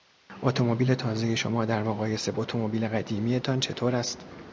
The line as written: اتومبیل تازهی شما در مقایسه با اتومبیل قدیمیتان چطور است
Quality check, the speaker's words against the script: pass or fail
fail